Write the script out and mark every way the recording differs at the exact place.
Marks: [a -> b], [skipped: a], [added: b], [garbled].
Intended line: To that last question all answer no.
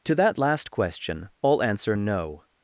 To that last question all answer no.